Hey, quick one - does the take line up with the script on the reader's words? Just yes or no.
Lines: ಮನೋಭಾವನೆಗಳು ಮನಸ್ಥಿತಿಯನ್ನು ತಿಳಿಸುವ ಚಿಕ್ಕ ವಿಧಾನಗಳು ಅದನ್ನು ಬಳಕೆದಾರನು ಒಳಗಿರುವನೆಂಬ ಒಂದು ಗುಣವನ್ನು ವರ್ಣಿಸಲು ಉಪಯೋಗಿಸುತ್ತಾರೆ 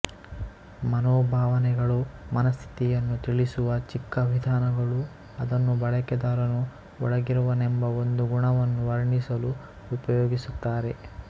yes